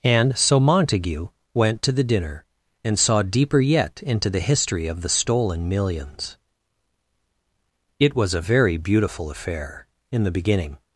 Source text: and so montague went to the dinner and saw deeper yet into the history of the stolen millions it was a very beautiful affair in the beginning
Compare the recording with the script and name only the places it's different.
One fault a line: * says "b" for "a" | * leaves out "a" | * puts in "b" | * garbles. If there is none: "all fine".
all fine